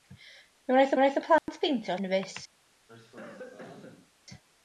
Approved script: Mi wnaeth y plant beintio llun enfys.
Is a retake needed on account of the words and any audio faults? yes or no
yes